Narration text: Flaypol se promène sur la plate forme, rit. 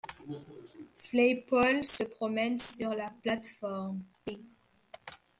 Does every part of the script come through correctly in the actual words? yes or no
yes